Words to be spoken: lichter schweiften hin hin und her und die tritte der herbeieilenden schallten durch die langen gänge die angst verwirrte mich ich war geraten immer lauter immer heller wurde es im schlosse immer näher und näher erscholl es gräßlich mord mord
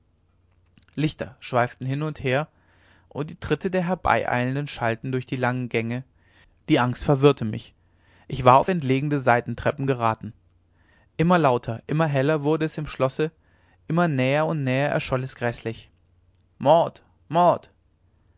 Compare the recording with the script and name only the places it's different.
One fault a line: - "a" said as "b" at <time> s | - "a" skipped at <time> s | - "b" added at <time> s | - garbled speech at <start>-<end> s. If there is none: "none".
- "hin" skipped at 2.0 s
- "auf entlegene seitentreppen" added at 8.6 s